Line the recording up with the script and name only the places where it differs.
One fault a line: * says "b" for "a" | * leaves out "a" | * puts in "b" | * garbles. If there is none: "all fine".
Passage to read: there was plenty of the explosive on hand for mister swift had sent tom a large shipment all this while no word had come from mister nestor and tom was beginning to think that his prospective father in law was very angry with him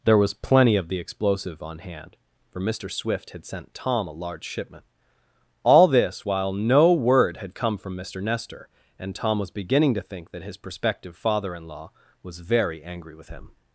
all fine